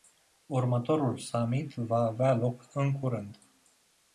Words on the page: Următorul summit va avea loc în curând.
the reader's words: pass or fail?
pass